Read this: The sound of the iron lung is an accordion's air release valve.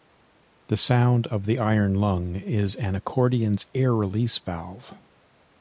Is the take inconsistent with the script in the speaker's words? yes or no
no